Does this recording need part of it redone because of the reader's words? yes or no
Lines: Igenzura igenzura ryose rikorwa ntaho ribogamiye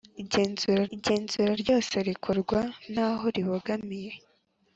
no